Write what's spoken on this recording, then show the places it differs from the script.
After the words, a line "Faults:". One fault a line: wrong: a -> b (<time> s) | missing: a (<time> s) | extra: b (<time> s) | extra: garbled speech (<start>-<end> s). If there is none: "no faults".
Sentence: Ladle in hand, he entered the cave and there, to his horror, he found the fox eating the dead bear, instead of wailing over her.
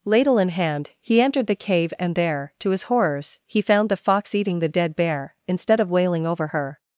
Ladle in hand, he entered the cave and there, to his horrors, he found the fox eating the dead bear, instead of wailing over her.
Faults:
wrong: horror -> horrors (2.8 s)